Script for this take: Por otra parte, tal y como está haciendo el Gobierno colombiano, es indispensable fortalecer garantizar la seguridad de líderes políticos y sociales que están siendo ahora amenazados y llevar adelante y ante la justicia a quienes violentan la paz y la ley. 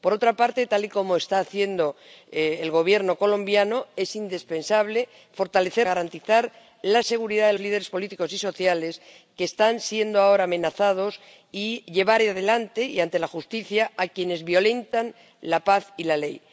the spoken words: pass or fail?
pass